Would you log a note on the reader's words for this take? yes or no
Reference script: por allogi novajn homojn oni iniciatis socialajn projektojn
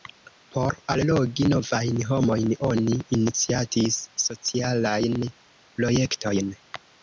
no